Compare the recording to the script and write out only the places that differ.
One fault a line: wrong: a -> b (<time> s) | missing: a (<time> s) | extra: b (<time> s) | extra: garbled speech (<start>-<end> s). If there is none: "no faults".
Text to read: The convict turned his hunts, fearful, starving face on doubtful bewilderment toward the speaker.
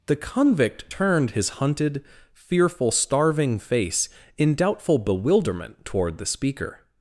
wrong: hunts -> hunted (1.6 s)
wrong: on -> in (4.4 s)